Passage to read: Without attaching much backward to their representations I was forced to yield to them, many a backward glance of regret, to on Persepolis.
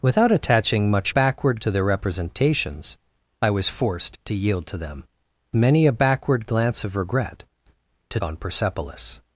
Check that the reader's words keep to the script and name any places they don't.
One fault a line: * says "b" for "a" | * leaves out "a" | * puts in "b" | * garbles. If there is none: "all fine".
all fine